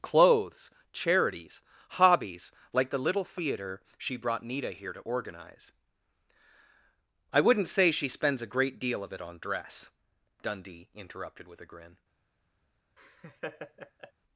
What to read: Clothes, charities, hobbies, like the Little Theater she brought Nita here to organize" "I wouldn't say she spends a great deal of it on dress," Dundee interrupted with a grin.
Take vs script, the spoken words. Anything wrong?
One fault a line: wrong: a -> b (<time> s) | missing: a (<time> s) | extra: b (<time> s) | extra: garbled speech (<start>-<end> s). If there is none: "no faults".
no faults